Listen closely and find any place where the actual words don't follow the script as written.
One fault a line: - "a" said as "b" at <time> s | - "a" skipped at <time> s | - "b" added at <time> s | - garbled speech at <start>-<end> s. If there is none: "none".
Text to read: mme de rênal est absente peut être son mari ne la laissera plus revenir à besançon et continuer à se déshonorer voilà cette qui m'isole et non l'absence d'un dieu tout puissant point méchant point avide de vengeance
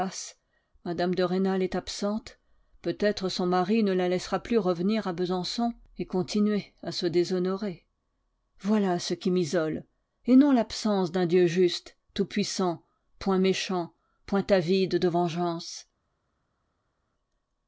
- "cette" said as "ce" at 9.0 s
- "juste" added at 11.4 s